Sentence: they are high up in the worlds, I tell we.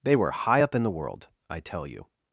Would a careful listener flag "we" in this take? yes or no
yes